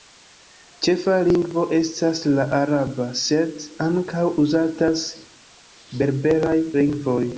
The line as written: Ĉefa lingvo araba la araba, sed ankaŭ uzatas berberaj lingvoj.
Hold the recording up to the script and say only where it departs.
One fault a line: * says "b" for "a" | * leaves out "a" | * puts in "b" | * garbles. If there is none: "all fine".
* says "estas" for "araba"